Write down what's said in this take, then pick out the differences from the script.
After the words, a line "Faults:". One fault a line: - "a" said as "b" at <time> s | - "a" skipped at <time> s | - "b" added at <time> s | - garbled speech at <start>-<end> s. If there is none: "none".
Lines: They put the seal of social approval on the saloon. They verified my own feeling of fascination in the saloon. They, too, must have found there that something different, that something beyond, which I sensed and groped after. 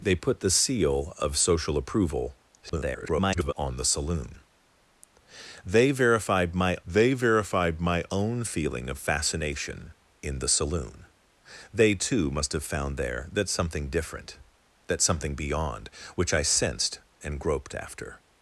They put the seal of social approval [garbled] on the saloon. They verified my they verified my own feeling of fascination in the saloon. They, too, must have found there that something different, that something beyond, which I sensed and groped after.
Faults:
- garbled speech at 2.6-3.5 s
- "they verified my" added at 6.8 s